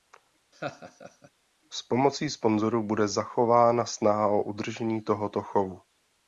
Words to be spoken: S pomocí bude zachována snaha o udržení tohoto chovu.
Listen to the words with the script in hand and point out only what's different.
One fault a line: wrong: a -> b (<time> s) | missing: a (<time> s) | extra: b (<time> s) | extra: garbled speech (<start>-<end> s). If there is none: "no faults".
extra: sponzorů (2.3 s)